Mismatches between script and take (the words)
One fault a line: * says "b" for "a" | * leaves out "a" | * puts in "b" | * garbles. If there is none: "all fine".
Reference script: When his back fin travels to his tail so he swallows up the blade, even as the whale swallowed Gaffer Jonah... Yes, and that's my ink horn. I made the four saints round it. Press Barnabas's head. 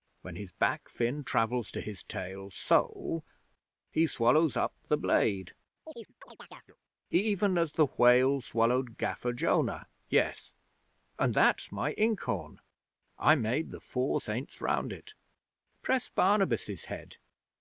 all fine